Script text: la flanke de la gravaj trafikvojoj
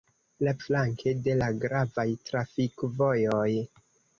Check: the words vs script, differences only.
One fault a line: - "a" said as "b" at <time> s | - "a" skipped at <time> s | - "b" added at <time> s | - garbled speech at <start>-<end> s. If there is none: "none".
none